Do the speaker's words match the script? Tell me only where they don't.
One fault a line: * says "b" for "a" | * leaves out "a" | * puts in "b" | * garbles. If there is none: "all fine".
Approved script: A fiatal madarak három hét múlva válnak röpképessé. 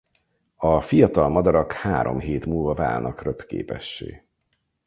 all fine